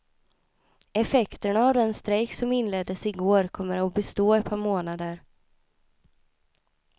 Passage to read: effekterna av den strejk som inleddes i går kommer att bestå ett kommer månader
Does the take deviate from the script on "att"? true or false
false